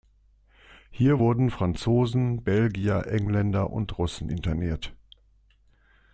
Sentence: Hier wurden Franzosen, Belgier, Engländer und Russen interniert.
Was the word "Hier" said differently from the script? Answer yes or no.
no